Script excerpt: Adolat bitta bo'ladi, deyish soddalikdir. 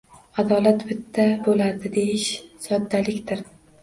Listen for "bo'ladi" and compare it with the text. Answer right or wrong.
right